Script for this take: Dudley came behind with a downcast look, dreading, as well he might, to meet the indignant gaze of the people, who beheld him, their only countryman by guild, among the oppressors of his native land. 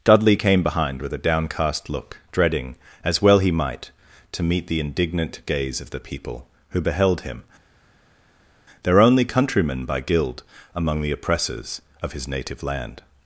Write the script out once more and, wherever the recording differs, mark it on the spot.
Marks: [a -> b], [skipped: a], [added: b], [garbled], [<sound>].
Dudley came behind with a downcast look, dreading, as well he might, to meet the indignant gaze of the people, who beheld him, their only countryman by guild, among the oppressors of his native land.